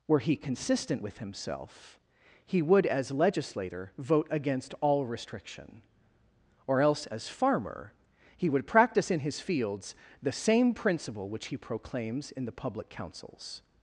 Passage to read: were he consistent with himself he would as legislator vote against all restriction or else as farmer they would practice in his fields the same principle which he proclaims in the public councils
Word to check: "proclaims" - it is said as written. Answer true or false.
true